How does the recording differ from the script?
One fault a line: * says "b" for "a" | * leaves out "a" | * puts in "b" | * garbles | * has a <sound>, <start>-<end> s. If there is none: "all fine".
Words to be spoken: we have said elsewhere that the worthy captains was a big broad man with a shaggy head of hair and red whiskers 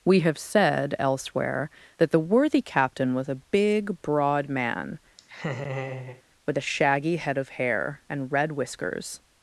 * says "captain" for "captains"
* has a laugh, 5.2-6.2 s